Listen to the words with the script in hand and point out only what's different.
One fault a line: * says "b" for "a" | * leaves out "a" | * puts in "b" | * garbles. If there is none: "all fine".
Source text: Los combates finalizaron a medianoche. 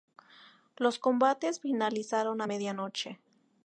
all fine